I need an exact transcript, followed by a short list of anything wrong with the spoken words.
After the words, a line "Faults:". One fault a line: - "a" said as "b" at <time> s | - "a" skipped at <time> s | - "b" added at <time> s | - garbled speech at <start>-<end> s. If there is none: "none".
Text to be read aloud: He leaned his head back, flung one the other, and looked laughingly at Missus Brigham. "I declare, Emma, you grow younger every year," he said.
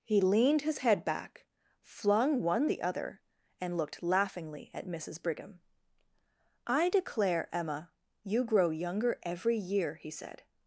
He leaned his head back, flung one the other, and looked laughingly at Missus Brigham. "I declare, Emma, you grow younger every year," he said.
Faults:
none